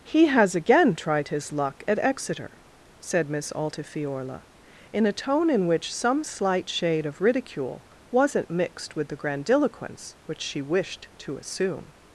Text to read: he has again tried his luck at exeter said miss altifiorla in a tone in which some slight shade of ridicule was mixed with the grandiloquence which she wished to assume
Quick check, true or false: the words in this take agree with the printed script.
false